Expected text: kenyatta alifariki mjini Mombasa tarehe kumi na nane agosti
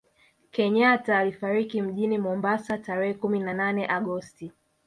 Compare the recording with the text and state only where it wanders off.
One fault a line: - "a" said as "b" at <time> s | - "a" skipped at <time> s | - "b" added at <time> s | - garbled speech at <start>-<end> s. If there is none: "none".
none